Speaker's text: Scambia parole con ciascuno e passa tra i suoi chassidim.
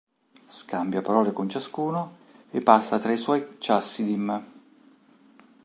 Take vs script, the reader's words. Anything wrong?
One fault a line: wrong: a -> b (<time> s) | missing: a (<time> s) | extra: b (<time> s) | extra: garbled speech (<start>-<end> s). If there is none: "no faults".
no faults